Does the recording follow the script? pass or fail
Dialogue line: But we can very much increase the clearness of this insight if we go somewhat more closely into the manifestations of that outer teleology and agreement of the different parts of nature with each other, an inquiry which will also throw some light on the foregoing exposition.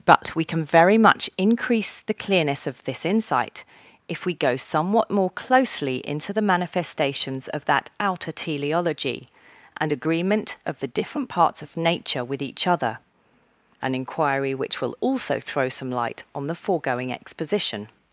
pass